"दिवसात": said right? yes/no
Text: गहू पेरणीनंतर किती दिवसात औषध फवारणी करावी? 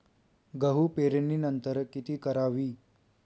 no